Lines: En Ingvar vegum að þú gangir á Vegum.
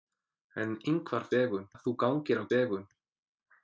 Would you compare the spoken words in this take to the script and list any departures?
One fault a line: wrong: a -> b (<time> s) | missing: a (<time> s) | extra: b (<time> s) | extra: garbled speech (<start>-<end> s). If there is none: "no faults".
no faults